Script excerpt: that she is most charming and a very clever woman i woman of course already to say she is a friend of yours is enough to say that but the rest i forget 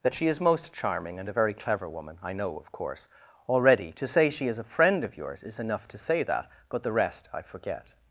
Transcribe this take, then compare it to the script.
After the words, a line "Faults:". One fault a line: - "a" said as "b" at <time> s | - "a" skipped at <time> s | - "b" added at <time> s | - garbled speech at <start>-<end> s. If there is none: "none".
that she is most charming and a very clever woman i know of course already to say she is a friend of yours is enough to say that but the rest i forget
Faults:
- "woman" said as "know" at 2.3 s